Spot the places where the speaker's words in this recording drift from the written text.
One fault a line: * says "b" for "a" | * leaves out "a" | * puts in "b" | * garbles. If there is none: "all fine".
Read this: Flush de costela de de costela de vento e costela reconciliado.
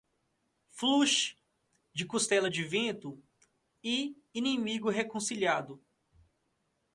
* leaves out "de costela de"
* says "inimigo" for "costela"